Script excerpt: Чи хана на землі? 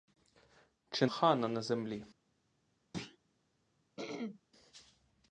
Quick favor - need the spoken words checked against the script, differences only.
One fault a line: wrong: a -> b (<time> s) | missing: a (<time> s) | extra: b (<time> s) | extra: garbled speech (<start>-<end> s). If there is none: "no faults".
no faults